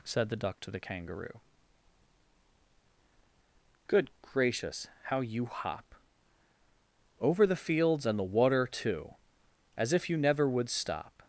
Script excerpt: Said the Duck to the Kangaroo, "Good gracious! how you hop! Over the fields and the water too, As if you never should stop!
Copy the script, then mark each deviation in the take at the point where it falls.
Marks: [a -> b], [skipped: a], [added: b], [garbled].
Said the Duck to the Kangaroo, "Good gracious! how you hop! Over the fields and the water too, As if you never [should -> would] stop!